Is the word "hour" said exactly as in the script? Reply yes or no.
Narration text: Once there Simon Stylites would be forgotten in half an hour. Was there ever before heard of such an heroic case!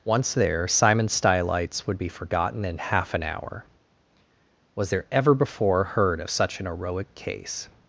yes